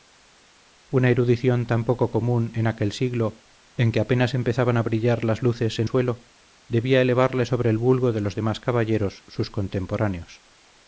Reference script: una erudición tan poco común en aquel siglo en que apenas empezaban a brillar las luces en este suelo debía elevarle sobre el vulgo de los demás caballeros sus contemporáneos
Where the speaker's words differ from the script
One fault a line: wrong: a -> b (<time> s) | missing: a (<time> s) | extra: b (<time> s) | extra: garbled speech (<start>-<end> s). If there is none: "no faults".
missing: este (5.9 s)